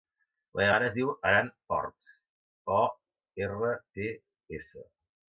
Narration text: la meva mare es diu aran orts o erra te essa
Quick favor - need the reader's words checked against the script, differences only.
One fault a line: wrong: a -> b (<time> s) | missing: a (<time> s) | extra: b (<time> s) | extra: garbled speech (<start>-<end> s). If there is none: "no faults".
no faults